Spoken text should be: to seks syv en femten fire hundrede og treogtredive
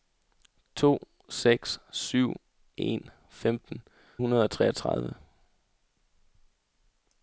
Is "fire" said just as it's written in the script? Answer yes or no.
no